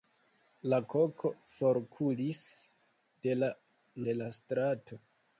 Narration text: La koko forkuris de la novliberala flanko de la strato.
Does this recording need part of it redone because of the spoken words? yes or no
yes